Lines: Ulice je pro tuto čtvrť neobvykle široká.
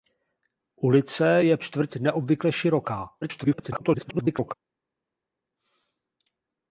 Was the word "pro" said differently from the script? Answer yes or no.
yes